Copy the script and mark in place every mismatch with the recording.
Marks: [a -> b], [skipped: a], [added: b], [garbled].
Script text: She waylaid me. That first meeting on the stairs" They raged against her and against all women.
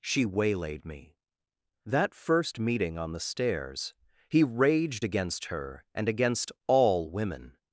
She waylaid me. That first meeting on the stairs" [They -> He] raged against her and against all women.